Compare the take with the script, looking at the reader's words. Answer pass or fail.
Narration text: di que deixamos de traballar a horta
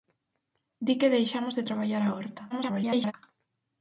fail